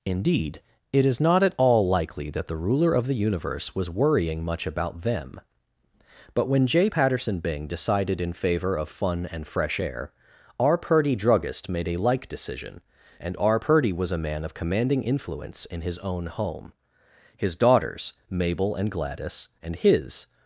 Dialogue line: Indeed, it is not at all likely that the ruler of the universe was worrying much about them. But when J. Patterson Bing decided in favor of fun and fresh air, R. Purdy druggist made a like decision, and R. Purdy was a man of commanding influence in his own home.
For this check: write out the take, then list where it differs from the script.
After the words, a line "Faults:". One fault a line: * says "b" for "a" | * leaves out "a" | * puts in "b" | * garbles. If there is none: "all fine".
Indeed, it is not at all likely that the ruler of the universe was worrying much about them. But when J. Patterson Bing decided in favor of fun and fresh air, R. Purdy druggist made a like decision, and R. Purdy was a man of commanding influence in his own home. His daughters, Mabel and Gladys, and his
Faults:
* puts in "His daughters Mabel and Gladys and his"